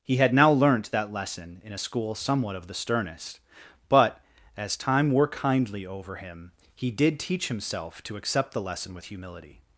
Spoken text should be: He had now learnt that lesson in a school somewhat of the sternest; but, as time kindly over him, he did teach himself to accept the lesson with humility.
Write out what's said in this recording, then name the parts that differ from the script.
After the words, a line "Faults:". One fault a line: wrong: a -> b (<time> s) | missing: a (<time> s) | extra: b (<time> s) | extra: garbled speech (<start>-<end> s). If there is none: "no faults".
He had now learnt that lesson in a school somewhat of the sternest; but, as time wore kindly over him, he did teach himself to accept the lesson with humility.
Faults:
extra: wore (5.1 s)